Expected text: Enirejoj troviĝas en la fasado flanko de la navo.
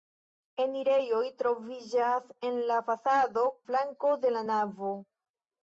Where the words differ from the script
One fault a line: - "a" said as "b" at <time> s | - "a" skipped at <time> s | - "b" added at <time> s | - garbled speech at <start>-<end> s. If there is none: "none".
none